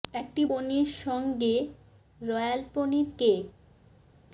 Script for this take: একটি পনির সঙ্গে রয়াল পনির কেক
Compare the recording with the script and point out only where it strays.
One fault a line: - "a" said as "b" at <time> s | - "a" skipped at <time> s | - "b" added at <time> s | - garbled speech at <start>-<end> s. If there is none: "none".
none